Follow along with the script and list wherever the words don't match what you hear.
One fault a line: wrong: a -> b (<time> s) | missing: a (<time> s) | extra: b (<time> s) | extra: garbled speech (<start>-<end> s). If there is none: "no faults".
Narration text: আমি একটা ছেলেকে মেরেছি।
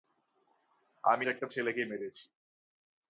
no faults